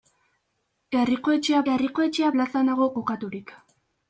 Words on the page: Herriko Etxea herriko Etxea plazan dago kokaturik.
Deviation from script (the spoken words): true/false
false